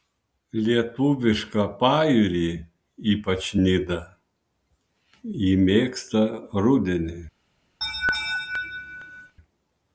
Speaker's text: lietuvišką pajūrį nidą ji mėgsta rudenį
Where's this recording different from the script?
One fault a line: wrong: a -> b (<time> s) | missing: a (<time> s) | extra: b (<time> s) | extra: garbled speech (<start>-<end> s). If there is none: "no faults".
extra: ypač (3.1 s)